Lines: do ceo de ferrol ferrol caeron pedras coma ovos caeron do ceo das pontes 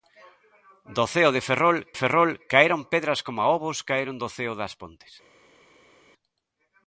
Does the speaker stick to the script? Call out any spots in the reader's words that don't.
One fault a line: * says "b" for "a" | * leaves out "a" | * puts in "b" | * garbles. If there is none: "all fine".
all fine